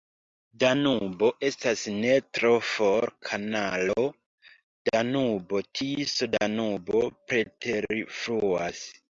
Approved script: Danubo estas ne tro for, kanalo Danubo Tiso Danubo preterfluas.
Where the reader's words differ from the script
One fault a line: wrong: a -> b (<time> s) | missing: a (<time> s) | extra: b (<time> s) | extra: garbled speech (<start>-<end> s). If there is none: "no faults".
no faults